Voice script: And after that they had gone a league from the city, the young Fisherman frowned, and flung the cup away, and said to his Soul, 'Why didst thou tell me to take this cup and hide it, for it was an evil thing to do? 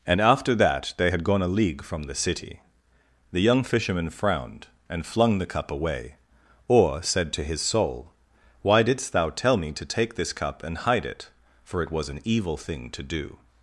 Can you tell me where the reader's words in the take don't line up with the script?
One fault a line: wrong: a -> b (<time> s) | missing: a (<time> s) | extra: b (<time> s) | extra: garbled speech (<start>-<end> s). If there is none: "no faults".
wrong: and -> or (6.7 s)